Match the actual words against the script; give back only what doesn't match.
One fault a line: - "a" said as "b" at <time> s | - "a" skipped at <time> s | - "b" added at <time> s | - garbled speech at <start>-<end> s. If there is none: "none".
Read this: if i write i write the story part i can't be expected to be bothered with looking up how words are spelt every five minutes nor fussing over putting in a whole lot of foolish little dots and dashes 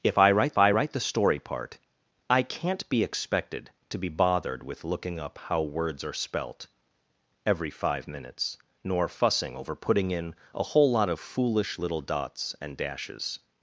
none